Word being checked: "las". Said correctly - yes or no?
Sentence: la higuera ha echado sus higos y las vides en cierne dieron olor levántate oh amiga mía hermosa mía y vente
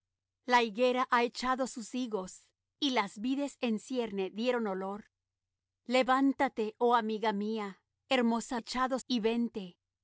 yes